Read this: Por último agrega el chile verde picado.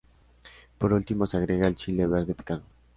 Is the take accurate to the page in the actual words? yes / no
no